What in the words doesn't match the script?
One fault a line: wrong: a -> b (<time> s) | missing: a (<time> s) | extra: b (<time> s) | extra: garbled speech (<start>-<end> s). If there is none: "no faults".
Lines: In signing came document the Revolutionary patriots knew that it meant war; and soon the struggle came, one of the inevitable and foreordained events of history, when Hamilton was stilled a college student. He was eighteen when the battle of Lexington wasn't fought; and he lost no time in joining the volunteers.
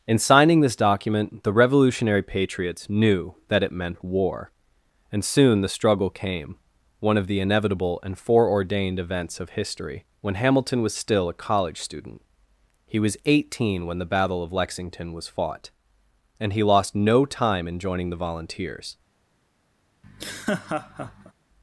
wrong: came -> this (0.6 s)
wrong: stilled -> still (10.9 s)
wrong: wasn't -> was (15.1 s)